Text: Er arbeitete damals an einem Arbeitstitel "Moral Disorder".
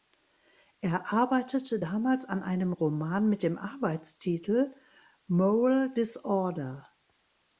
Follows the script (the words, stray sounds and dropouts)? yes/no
no